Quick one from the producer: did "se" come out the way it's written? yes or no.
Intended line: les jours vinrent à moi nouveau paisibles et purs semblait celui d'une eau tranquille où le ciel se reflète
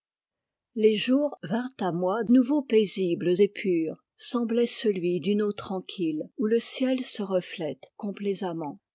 yes